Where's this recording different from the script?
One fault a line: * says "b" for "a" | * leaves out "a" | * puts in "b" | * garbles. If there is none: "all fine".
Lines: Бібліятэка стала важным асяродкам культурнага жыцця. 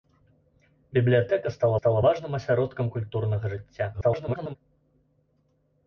* puts in "стала"
* garbles